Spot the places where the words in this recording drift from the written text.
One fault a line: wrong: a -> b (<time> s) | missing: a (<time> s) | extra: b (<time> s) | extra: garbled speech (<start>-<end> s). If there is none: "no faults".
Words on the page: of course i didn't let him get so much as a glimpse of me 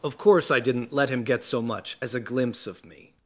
no faults